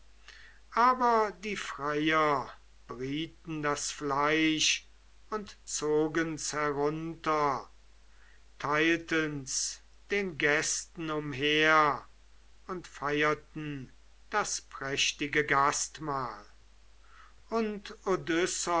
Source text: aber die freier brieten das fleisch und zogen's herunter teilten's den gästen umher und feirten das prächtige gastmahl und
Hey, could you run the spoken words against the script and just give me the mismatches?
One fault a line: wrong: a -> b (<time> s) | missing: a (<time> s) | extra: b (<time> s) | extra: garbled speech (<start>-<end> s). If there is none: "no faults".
no faults